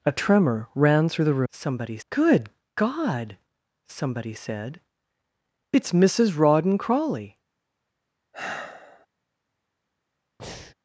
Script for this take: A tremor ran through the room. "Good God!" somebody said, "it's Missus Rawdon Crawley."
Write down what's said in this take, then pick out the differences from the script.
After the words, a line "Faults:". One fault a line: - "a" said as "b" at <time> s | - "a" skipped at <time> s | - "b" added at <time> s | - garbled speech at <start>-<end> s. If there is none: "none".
A tremor ran through the somebody. "Good God!" somebody said, "it's Missus Rawdon Crawley."
Faults:
- "room" said as "somebody" at 1.5 s